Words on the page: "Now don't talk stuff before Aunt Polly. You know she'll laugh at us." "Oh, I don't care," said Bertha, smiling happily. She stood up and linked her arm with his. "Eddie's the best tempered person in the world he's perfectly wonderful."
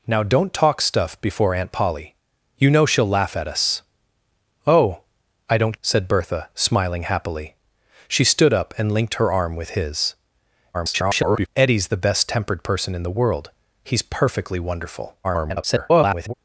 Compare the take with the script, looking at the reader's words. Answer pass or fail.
fail